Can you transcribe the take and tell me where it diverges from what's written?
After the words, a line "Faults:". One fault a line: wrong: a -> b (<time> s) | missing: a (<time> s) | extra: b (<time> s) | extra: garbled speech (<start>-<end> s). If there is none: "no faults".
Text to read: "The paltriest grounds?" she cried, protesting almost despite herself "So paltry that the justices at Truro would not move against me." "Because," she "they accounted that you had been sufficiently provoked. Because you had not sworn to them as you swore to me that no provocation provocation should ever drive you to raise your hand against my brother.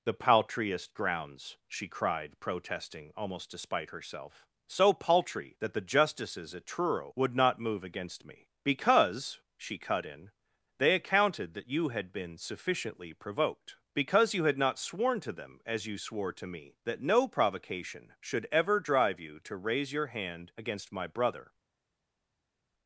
"The paltriest grounds?" she cried, protesting almost despite herself "So paltry that the justices at Truro would not move against me." "Because," she cut in, "they accounted that you had been sufficiently provoked. Because you had not sworn to them as you swore to me that no provocation should ever drive you to raise your hand against my brother.
Faults:
extra: cut in (9.8 s)
missing: provocation (18.1 s)